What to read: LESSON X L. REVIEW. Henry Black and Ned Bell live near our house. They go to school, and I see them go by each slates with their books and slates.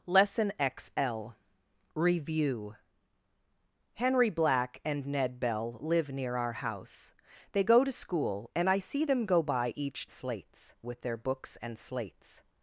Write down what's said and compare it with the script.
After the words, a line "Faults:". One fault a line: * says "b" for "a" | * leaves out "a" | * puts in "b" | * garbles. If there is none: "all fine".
LESSON X L. REVIEW. Henry Black and Ned Bell live near our house. They go to school, and I see them go by each slates with their books and slates.
Faults:
all fine